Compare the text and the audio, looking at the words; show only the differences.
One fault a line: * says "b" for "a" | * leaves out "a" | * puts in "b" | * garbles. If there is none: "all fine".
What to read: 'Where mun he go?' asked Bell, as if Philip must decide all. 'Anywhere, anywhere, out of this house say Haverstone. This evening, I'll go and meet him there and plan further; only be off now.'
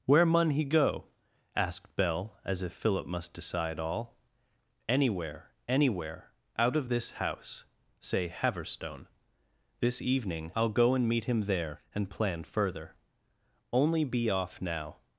all fine